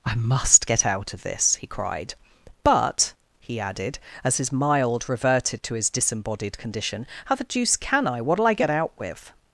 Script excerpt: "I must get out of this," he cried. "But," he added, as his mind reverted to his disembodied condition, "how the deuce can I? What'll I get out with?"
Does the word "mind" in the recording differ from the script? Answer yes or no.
yes